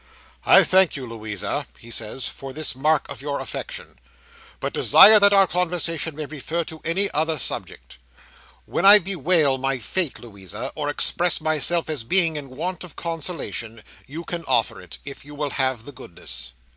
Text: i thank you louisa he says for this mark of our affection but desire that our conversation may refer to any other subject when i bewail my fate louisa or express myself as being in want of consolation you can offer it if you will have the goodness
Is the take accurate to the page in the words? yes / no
no